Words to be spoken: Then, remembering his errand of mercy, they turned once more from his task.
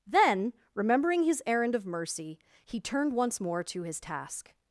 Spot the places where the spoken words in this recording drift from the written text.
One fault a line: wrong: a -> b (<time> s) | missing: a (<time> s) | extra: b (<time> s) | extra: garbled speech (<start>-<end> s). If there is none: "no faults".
wrong: they -> he (2.6 s)
wrong: from -> to (3.6 s)